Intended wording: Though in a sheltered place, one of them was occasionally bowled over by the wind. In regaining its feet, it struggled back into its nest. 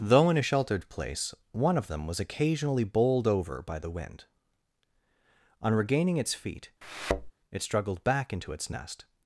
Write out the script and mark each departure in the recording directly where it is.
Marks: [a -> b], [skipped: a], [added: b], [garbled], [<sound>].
Though in a sheltered place, one of them was occasionally bowled over by the wind. [In -> On] regaining its feet, [thud] it struggled back into its nest.